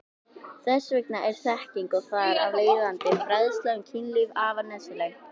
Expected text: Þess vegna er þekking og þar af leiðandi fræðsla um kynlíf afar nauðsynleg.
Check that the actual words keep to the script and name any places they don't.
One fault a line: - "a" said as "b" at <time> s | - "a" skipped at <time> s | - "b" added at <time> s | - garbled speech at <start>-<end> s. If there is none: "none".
none